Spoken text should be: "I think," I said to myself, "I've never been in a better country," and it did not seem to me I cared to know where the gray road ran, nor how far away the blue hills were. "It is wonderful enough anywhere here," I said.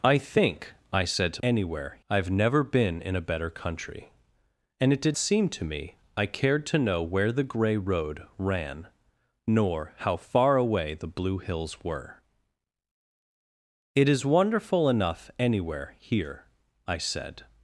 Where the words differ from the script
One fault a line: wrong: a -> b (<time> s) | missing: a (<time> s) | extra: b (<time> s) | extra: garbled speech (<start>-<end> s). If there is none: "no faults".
wrong: myself -> anywhere (1.4 s)
missing: not (5.2 s)